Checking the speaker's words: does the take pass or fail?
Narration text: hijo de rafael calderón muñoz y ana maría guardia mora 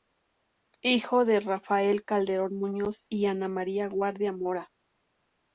pass